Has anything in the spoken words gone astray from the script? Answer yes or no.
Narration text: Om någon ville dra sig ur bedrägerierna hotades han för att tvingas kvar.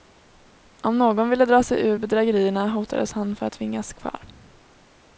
no